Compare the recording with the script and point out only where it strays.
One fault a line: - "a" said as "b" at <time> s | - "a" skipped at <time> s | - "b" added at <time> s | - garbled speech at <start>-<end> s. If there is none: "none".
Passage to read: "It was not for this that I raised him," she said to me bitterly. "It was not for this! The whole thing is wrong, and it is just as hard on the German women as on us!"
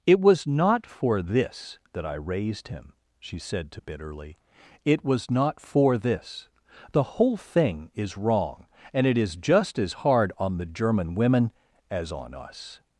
- "me" skipped at 3.8 s